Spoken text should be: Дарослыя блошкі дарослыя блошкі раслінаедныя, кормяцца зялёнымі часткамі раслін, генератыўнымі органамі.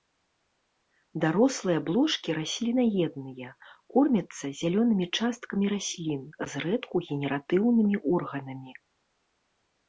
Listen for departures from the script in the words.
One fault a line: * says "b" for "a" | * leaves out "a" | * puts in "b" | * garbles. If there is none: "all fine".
* leaves out "дарослыя блошкі"
* puts in "зрэдку"